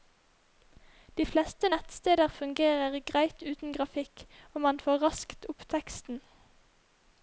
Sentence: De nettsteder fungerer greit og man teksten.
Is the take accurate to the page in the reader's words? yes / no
no